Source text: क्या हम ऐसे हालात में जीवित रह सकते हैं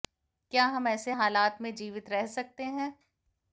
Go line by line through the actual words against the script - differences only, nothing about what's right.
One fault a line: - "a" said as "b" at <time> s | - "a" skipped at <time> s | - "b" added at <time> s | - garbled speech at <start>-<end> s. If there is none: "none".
none